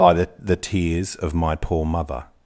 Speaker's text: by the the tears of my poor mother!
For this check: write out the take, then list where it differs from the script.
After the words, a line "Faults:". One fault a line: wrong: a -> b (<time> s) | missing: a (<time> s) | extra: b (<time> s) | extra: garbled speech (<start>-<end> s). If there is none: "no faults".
by the the tears of my poor mother!
Faults:
no faults